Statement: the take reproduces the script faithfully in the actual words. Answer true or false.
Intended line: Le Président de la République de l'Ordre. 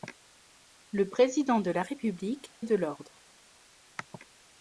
true